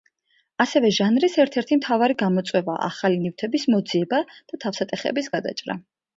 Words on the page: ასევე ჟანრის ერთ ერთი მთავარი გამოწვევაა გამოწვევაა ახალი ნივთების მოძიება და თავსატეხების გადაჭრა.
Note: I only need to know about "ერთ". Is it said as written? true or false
true